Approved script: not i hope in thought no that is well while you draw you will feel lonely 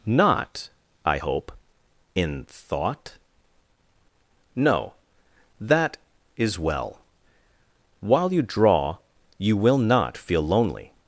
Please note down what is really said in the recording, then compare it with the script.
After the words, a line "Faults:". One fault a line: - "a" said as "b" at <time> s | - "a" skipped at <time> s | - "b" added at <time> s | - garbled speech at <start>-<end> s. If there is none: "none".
not i hope in thought no that is well while you draw you will not feel lonely
Faults:
- "not" added at 9.8 s